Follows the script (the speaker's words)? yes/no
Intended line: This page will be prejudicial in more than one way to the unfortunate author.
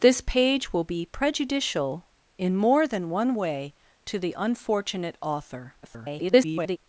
no